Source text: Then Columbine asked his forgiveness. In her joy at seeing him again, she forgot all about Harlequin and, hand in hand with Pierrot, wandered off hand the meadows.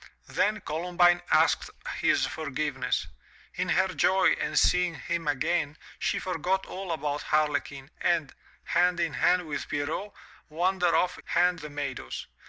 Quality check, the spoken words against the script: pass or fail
pass